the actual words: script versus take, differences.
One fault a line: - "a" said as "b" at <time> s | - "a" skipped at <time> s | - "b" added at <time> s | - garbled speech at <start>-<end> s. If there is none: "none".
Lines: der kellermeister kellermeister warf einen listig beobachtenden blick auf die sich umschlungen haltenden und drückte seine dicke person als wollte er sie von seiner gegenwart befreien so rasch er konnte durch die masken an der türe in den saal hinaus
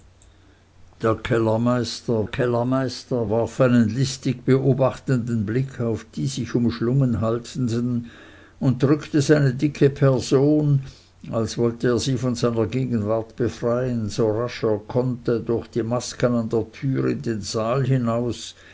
none